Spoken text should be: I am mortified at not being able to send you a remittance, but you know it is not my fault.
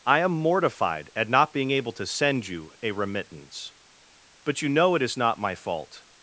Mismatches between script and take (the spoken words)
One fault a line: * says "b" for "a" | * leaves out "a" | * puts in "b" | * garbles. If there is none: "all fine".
all fine